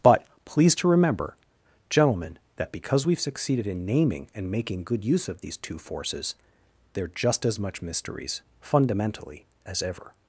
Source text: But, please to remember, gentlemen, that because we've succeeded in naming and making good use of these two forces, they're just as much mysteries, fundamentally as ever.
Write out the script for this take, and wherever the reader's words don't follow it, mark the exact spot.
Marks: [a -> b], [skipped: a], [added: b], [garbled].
But, please to remember, gentlemen, that because we've succeeded in naming and making good use of these two forces, they're just as much mysteries, fundamentally as ever.